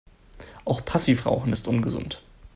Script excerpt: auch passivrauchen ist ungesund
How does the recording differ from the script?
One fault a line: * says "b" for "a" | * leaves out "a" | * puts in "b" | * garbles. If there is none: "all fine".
all fine